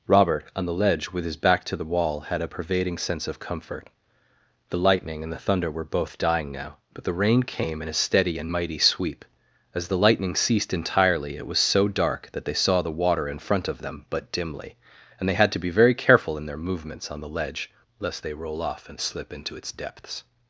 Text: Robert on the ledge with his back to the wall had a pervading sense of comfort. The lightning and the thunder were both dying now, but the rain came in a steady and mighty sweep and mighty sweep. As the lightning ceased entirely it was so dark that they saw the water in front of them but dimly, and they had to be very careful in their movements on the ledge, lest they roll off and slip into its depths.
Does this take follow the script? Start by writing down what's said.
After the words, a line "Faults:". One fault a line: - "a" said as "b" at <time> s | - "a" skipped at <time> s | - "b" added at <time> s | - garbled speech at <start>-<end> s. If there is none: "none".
Robert on the ledge with his back to the wall had a pervading sense of comfort. The lightning and the thunder were both dying now, but the rain came in a steady and mighty sweep. As the lightning ceased entirely it was so dark that they saw the water in front of them but dimly, and they had to be very careful in their movements on the ledge, lest they roll off and slip into its depths.
Faults:
- "and mighty sweep" skipped at 9.2 s